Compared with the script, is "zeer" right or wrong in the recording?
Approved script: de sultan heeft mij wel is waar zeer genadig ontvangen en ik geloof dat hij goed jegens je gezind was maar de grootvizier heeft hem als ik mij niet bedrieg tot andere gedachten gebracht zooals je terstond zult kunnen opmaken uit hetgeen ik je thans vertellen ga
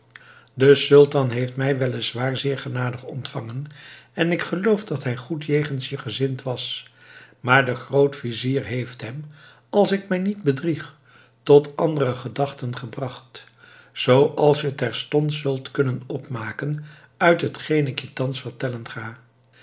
right